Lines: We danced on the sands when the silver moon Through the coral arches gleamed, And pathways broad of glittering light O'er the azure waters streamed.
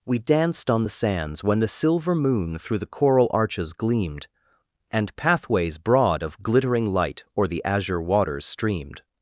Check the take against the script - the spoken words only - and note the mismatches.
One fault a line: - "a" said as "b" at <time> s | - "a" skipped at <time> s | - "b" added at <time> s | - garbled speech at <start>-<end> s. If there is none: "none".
none